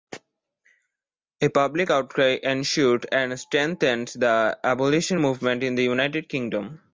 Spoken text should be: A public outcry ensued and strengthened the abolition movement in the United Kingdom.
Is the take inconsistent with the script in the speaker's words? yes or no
no